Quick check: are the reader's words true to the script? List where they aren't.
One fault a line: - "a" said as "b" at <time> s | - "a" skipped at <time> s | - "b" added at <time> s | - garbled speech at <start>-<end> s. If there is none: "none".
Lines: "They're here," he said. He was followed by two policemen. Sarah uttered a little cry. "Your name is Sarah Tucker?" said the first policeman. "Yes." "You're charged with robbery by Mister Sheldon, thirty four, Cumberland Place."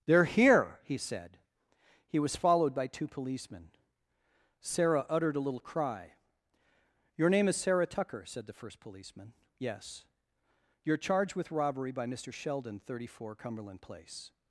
none